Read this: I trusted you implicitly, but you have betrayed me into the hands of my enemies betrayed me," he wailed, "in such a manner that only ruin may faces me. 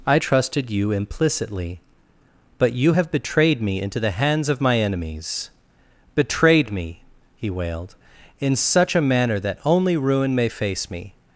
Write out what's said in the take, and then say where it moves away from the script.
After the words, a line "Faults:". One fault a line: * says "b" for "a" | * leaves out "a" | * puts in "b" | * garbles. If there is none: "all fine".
I trusted you implicitly, but you have betrayed me into the hands of my enemies betrayed me," he wailed, "in such a manner that only ruin may face me.
Faults:
* says "face" for "faces"